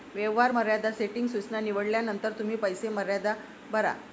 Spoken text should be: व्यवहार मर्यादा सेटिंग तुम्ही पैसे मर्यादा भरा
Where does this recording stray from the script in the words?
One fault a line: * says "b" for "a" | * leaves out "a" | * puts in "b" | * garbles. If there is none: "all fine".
* puts in "सूचना निवडल्यानंतर"